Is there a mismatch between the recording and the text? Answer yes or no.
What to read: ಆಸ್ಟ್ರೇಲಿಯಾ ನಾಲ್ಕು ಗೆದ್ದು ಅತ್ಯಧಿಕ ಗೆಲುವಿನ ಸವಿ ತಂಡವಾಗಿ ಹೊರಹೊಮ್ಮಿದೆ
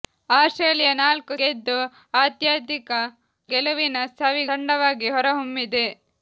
no